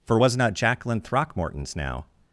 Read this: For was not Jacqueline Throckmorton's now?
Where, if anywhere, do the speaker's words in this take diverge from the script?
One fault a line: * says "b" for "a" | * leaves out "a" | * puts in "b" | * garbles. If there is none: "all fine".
all fine